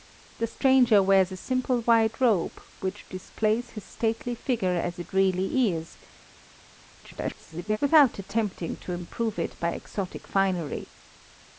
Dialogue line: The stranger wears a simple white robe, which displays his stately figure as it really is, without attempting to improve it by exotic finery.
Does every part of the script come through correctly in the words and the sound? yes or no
no